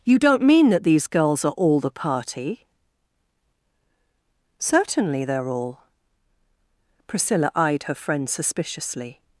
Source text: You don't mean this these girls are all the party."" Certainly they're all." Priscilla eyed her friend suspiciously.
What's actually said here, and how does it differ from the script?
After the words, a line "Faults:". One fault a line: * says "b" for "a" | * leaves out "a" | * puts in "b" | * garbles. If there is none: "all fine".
You don't mean that these girls are all the party."" Certainly they're all." Priscilla eyed her friend suspiciously.
Faults:
* says "that" for "this"